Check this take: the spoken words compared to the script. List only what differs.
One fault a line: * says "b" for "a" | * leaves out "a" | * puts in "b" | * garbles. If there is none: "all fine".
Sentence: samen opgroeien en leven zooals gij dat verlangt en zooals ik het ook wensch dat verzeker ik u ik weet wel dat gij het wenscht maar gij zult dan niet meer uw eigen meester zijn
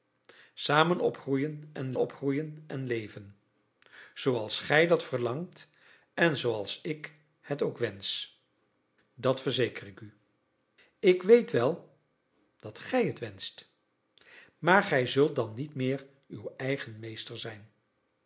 * puts in "opgroeien en"